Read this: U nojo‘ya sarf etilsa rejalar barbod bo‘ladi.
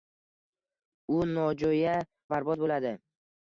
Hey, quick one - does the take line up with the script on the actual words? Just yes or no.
no